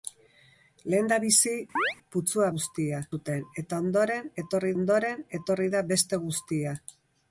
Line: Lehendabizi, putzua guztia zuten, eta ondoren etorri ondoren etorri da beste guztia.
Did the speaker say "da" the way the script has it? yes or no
yes